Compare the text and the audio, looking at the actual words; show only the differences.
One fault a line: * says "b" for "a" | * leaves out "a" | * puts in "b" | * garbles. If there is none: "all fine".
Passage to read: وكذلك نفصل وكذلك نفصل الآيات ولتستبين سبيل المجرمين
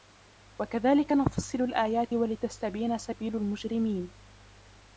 * leaves out "وكذلك نفصل"